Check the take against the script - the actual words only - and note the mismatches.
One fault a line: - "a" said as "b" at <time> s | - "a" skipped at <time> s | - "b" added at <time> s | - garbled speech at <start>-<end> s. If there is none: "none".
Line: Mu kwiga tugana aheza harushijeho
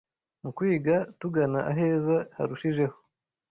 none